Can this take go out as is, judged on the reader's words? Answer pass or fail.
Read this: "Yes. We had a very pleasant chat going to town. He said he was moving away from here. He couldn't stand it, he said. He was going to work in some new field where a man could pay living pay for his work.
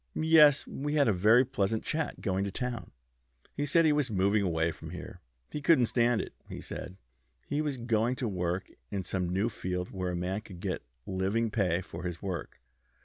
fail